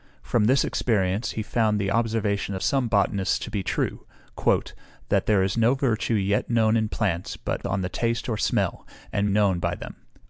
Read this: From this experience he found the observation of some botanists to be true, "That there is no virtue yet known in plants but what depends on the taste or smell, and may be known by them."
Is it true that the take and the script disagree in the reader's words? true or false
true